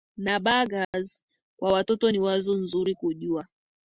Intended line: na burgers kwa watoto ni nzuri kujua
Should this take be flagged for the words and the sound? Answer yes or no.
yes